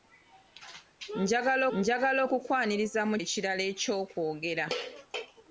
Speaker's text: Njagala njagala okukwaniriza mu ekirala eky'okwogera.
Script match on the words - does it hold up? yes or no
yes